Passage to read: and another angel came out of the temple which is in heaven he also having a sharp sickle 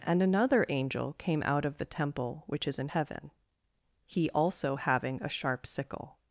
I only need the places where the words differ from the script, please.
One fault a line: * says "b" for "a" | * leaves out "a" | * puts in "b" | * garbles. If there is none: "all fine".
all fine